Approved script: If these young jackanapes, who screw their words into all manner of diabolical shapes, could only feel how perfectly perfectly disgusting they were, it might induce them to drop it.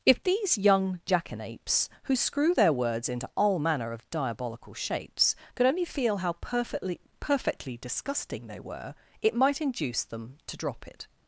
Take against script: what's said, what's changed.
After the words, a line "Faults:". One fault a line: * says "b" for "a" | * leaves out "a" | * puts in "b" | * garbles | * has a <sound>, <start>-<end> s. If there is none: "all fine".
If these young jackanapes, who screw their words into all manner of diabolical shapes, could only feel how perfectly perfectly disgusting they were, it might induce them to drop it.
Faults:
all fine